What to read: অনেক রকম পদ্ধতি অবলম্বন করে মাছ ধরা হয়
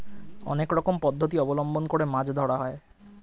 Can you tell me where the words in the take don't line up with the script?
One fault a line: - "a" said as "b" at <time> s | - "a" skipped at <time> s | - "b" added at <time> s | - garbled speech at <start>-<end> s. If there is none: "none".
none